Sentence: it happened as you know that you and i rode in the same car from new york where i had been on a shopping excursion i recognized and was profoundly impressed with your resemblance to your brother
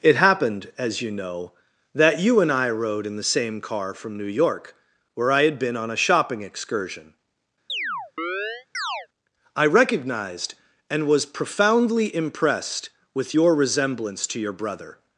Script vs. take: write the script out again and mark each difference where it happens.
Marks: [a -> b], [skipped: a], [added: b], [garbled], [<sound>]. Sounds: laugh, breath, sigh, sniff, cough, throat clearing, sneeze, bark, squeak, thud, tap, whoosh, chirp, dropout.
it happened as you know that you and i rode in the same car from new york where i had been on a shopping excursion [chirp] i recognized and was profoundly impressed with your resemblance to your brother